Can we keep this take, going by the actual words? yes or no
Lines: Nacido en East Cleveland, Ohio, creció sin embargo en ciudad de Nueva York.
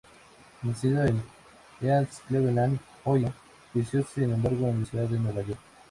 yes